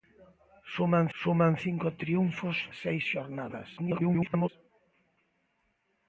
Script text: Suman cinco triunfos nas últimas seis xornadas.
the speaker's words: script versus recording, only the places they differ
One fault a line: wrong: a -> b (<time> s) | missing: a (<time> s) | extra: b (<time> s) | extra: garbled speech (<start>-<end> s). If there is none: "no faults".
extra: suman (1.2 s)
missing: nas últimas (2.6 s)
extra: garbled speech (3.8-4.5 s)